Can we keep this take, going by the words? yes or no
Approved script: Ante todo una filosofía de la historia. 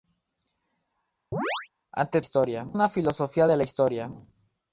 no